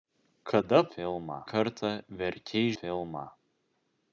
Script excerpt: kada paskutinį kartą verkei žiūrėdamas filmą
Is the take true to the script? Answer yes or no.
no